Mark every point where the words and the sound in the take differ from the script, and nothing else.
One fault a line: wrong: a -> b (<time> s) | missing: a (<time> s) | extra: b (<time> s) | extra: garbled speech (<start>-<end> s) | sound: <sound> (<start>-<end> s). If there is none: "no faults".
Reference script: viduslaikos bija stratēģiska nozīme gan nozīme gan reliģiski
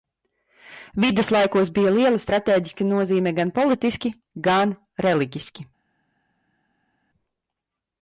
extra: liela (2.0 s)
wrong: nozīme -> politiski (3.6 s)